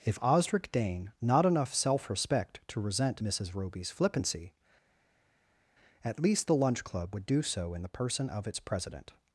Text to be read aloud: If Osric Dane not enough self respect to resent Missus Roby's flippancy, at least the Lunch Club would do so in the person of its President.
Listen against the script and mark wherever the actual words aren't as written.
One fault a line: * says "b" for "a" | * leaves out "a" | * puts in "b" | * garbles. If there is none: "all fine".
all fine